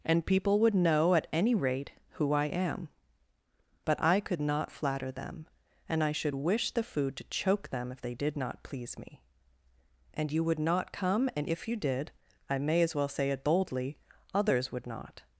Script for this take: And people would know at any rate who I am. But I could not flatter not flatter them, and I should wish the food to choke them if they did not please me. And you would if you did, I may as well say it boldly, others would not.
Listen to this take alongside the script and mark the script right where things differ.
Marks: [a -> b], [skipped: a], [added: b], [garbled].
And people would know at any rate who I am. But I could not flatter [skipped: not flatter] them, and I should wish the food to choke them if they did not please me. And you would [added: not come and] if you did, I may as well say it boldly, others would not.